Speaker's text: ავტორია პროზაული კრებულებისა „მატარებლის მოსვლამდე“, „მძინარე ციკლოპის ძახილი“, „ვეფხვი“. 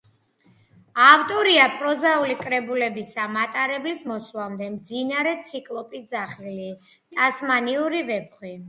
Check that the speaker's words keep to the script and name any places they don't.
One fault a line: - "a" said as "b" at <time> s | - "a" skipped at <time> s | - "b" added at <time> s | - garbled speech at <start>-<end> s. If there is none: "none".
- "ტასმანიური" added at 7.2 s